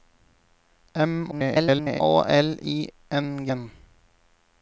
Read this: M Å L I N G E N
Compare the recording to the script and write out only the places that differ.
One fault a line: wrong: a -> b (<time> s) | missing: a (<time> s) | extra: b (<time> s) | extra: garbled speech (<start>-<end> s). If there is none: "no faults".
extra: garbled speech (1.3-2.0 s)
missing: E (3.5 s)